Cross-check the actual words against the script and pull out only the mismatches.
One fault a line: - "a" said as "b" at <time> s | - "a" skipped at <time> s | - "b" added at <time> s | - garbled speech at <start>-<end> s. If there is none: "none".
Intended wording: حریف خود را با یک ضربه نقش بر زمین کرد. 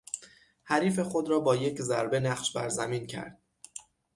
none